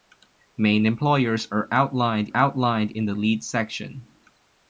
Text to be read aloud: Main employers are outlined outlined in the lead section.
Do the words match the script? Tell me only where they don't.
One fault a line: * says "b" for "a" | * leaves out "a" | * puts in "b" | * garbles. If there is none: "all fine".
all fine